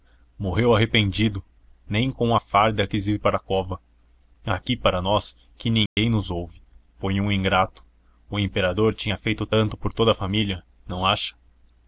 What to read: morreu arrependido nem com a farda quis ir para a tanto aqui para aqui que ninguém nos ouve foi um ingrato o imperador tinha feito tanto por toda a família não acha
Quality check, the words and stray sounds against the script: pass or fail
fail